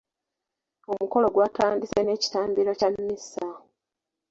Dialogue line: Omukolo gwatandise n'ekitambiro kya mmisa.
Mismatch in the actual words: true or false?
false